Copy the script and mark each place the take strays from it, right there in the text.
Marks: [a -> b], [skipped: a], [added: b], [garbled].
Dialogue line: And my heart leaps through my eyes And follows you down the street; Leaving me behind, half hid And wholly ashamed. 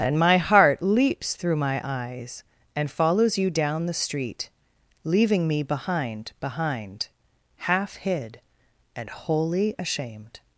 And my heart leaps through my eyes And follows you down the street; Leaving me behind, [added: behind] half hid And wholly ashamed.